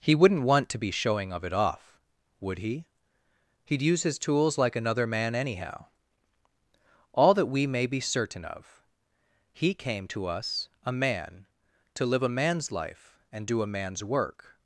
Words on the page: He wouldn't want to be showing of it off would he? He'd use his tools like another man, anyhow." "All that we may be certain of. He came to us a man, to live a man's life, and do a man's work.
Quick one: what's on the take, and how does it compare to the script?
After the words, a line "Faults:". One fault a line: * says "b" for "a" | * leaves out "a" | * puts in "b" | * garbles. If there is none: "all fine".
He wouldn't want to be showing of it off would he? He'd use his tools like another man, anyhow." "All that we may be certain of. He came to us a man, to live a man's life, and do a man's work.
Faults:
all fine